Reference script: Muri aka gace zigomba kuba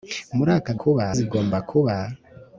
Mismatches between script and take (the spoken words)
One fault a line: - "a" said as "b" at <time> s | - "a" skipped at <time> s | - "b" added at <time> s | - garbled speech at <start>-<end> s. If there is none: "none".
- "gace" said as "kuba" at 0.8 s